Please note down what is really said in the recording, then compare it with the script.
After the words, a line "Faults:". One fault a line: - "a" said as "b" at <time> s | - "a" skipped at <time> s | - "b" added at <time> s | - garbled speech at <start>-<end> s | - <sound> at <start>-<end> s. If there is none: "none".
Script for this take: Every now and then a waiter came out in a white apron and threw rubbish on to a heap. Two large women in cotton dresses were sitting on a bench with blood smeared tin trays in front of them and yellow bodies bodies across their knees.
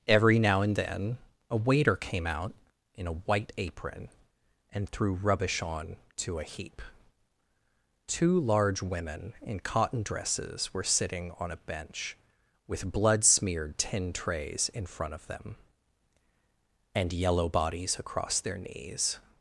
Every now and then a waiter came out in a white apron and threw rubbish on to a heap. Two large women in cotton dresses were sitting on a bench with blood smeared tin trays in front of them and yellow bodies across their knees.
Faults:
- "bodies" skipped at 18.0 s